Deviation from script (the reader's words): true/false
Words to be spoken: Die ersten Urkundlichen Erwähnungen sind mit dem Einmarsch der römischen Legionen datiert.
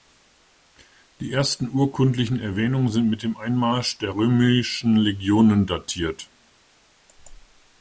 false